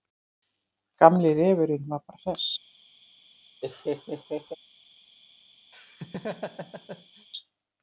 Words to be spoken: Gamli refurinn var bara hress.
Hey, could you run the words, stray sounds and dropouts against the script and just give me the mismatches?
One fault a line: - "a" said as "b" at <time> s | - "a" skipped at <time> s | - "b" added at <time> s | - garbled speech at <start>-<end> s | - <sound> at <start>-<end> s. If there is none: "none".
- laugh at 3.6-4.5 s
- laugh at 5.7-7.3 s